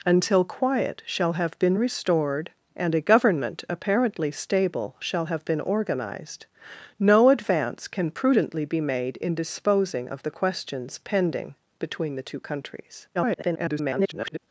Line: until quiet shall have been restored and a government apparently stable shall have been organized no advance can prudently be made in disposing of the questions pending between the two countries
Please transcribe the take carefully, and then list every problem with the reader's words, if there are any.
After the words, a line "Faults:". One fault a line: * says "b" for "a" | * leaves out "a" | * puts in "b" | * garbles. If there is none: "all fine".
until quiet shall have been restored and a government apparently stable shall have been organized no advance can prudently be made in disposing of the questions pending between the two countries [garbled]
Faults:
* garbles